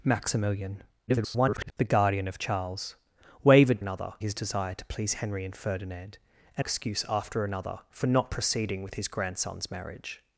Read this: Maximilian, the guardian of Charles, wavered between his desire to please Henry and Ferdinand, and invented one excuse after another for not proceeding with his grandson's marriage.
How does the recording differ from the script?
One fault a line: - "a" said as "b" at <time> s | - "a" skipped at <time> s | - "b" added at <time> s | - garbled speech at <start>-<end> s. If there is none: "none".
- garbled speech at 1.1-1.7 s
- "between" said as "another" at 3.8 s
- "invented one" skipped at 6.6 s